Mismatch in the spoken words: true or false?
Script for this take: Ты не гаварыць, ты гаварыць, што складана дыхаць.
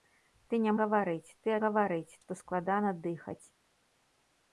false